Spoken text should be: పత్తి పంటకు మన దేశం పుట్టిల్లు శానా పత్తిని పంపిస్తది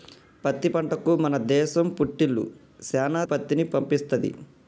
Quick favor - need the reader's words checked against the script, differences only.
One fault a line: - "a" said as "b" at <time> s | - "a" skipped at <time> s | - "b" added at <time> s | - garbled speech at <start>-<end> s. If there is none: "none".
none